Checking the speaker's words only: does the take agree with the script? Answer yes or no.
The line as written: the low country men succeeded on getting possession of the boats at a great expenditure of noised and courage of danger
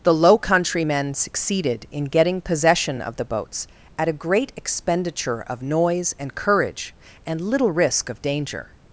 no